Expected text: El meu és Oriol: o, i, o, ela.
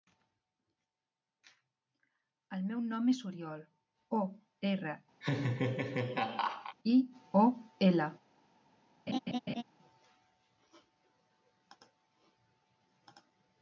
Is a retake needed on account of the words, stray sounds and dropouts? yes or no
yes